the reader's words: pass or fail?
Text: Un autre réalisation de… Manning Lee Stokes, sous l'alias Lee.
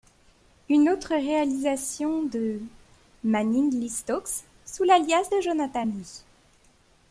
fail